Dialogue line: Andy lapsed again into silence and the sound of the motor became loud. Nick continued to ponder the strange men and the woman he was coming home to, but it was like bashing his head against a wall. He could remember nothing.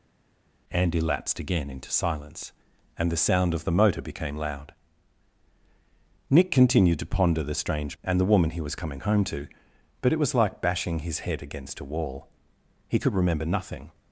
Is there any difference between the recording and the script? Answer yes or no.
yes